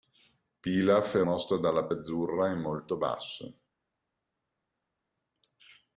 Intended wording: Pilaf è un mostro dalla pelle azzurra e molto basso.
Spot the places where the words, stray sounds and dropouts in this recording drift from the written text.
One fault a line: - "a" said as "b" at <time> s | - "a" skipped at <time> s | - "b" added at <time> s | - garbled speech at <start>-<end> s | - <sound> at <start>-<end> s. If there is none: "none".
- "un" skipped at 1.2 s
- "pelle" skipped at 1.9 s